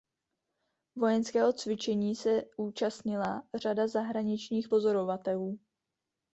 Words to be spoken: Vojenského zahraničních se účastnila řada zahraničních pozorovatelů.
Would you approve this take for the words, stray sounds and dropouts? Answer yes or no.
no